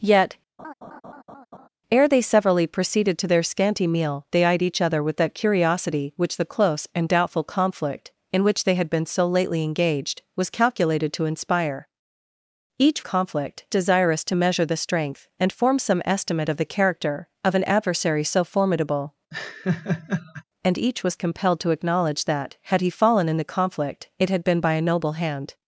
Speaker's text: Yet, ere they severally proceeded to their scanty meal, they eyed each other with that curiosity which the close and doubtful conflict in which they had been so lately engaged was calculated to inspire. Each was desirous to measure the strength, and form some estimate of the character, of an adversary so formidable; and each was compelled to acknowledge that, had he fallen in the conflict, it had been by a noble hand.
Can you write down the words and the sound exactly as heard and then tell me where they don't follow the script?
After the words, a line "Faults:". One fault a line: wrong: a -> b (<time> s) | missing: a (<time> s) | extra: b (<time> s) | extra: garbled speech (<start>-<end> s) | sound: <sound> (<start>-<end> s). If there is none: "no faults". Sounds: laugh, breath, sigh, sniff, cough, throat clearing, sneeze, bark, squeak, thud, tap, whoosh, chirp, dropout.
Yet, ere they severally proceeded to their scanty meal, they eyed each other with that curiosity which the close and doubtful conflict in which they had been so lately engaged was calculated to inspire. Each conflict desirous to measure the strength, and form some estimate of the character, of an adversary so formidable; and each was compelled to acknowledge that, had he fallen in the conflict, it had been by a noble hand.
Faults:
sound: laugh (0.6-1.7 s)
wrong: was -> conflict (13.0 s)
sound: laugh (19.3-20.4 s)